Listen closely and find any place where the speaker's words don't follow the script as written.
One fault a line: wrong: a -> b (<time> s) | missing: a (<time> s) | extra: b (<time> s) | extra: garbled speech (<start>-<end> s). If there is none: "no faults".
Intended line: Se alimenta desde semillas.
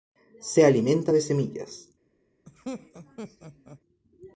wrong: desde -> de (1.1 s)